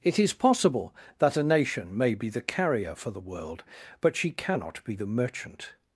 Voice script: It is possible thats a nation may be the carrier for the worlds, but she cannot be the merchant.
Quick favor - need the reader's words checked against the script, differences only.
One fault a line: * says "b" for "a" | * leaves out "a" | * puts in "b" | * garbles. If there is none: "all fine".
* says "that" for "thats"
* says "world" for "worlds"